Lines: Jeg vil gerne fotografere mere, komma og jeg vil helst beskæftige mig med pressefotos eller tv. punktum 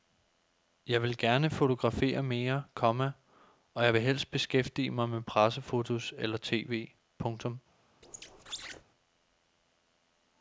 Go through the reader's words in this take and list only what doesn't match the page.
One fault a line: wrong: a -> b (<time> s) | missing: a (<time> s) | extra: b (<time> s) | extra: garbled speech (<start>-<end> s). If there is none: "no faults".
no faults